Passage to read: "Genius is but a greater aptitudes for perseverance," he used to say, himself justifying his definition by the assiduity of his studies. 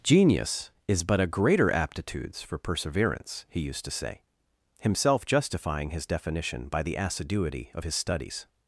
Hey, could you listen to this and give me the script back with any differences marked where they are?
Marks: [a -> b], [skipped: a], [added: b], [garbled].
"Genius is but a greater aptitudes for perseverance," he used to say, himself justifying his definition by the assiduity of his studies.